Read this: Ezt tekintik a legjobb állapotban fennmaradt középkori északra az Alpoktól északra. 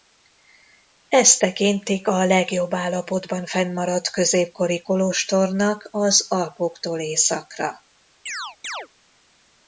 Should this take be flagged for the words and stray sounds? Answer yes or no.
yes